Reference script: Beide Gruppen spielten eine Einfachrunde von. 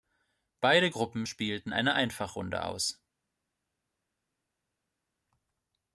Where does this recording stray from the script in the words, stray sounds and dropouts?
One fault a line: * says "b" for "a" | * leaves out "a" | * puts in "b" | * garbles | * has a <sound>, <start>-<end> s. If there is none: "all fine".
* says "aus" for "von"